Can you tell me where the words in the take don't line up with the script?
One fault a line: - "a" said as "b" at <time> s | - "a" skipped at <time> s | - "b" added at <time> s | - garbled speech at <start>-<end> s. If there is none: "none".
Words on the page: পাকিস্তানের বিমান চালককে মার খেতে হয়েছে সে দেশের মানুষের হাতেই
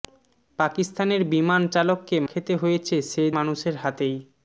- "মার" skipped at 2.2 s
- "দেশের" skipped at 3.2 s